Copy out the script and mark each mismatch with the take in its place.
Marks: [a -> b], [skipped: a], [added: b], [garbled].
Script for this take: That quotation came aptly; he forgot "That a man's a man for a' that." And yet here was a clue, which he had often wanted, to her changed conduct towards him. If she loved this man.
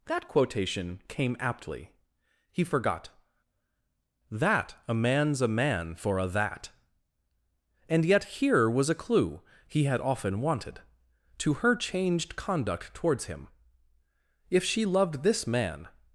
That quotation came aptly; he forgot "That a man's a man for a' that." And yet here was a clue, [skipped: which] he had often wanted, to her changed conduct towards him. If she loved this man.